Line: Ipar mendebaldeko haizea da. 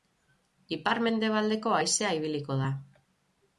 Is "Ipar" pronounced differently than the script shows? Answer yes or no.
no